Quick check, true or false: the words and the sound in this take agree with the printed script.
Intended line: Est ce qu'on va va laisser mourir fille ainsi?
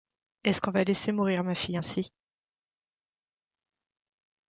false